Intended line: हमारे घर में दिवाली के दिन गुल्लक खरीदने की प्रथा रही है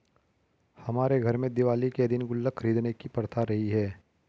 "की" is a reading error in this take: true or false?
false